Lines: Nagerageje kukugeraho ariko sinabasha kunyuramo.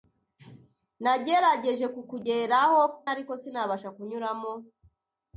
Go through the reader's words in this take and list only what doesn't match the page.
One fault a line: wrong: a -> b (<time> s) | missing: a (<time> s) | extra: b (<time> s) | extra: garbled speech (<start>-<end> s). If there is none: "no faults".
no faults